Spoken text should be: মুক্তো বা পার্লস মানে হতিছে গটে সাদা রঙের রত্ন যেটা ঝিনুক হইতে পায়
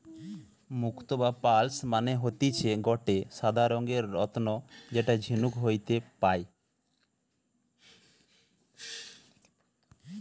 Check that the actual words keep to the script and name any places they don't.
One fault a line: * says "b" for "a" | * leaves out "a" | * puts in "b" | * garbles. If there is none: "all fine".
all fine